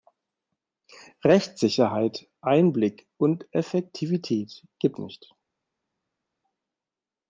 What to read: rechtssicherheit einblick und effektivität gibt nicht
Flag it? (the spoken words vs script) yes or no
no